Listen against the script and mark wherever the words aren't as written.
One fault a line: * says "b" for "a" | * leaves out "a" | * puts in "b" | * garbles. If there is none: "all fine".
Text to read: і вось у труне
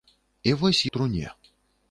all fine